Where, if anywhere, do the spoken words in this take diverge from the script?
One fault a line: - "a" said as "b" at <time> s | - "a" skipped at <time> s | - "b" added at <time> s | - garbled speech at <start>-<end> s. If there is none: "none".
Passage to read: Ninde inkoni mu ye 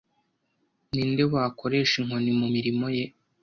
- "wakoresha" added at 1.3 s
- "mirimo" added at 2.5 s